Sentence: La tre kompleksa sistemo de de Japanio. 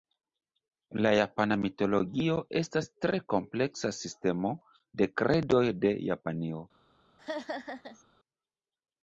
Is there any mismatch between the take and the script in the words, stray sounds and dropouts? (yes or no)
yes